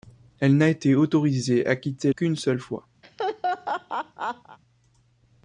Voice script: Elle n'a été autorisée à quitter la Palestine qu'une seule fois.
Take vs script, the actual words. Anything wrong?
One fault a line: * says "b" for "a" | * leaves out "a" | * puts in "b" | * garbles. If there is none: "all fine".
* leaves out "la Palestine"